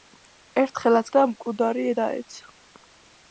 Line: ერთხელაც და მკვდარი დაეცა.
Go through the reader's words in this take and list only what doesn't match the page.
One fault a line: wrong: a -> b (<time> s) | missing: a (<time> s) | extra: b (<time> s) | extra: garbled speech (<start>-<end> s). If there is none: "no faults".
no faults